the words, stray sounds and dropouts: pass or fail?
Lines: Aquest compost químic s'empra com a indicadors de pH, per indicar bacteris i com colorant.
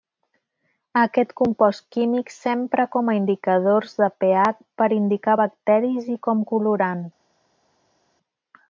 pass